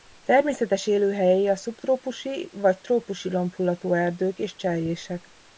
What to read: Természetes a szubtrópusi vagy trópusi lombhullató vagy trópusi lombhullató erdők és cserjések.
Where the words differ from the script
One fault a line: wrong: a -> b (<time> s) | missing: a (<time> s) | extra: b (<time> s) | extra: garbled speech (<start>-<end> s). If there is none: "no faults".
extra: élőhelyei (0.9 s)
missing: vagy trópusi lombhullató (3.9 s)